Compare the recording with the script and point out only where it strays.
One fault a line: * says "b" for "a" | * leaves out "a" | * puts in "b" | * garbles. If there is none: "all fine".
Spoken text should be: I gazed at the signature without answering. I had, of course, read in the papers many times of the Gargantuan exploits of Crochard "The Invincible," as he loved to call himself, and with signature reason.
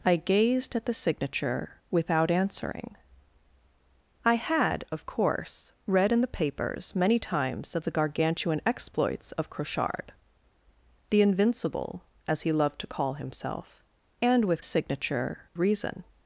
all fine